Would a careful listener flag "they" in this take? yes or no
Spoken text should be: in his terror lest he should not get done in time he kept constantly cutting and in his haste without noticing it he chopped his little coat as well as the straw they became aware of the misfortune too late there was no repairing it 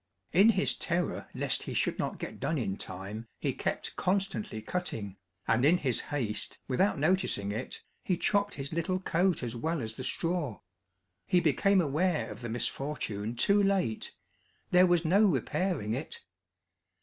yes